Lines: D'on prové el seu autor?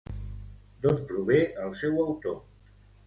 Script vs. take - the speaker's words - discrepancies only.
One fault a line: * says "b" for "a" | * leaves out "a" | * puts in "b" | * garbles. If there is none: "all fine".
all fine